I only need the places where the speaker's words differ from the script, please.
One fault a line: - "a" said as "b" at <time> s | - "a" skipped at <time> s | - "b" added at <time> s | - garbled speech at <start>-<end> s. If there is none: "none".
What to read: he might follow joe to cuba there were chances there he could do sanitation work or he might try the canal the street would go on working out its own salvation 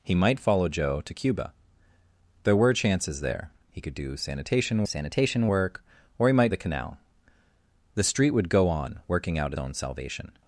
- "sanitation" added at 4.8 s
- "try" skipped at 6.5 s
- "its" skipped at 9.5 s